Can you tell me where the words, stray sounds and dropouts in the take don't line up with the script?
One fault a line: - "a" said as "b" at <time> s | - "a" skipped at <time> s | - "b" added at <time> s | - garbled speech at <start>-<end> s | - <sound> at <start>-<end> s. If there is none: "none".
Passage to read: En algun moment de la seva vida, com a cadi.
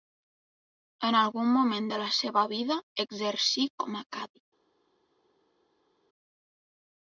- "exercí" added at 3.0 s